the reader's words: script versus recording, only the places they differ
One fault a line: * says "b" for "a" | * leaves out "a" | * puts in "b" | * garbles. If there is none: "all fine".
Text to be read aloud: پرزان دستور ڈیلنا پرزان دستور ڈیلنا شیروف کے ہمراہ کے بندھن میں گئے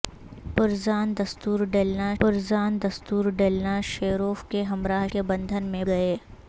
all fine